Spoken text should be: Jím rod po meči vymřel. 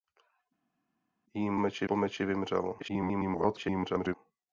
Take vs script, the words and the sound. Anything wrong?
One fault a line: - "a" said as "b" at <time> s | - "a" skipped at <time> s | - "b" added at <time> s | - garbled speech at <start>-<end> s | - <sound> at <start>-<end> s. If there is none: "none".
- "rod" said as "meči" at 1.6 s
- garbled speech at 2.8-4.2 s